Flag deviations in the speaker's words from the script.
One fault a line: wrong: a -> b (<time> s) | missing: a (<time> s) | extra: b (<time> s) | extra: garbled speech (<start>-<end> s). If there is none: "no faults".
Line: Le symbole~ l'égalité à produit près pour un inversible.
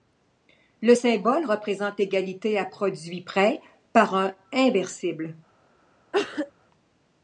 extra: représente (1.4 s)
wrong: pour -> par (3.9 s)